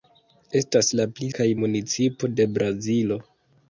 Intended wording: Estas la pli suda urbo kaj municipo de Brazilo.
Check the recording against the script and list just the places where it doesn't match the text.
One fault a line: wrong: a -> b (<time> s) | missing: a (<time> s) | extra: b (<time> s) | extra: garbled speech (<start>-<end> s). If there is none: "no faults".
missing: suda urbo (1.3 s)